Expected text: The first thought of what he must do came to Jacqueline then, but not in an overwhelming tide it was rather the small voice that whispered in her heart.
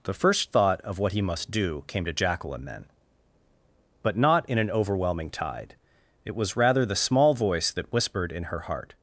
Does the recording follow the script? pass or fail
pass